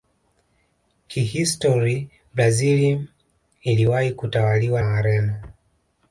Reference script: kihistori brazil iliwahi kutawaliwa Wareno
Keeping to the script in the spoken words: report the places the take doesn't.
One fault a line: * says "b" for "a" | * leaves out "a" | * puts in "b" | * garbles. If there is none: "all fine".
all fine